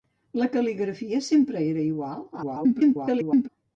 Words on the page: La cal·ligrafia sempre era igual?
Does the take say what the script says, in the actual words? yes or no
no